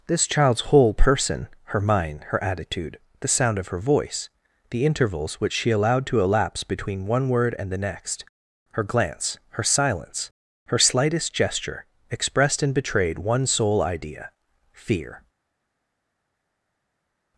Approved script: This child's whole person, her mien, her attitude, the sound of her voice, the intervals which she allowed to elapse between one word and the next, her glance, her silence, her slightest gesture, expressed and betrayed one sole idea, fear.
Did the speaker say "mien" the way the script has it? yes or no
no